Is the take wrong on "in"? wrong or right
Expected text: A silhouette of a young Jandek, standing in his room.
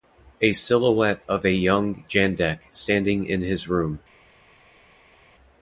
right